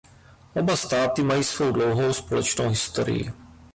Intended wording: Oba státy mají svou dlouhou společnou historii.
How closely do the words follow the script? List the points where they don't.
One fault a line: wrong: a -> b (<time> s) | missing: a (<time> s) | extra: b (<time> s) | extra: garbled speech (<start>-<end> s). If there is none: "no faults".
no faults